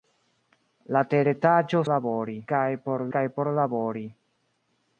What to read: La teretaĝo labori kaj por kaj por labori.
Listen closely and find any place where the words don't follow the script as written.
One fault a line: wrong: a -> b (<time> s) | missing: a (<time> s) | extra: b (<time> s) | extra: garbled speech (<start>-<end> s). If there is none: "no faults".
no faults